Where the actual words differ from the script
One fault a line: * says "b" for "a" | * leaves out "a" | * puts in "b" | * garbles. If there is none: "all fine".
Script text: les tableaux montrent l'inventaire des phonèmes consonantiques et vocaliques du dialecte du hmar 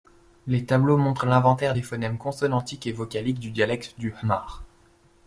all fine